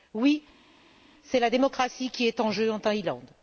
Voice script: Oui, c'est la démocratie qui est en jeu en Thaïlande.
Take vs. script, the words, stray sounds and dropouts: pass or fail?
pass